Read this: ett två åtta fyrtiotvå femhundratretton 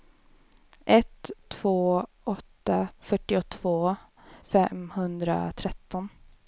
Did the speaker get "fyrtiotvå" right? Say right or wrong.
right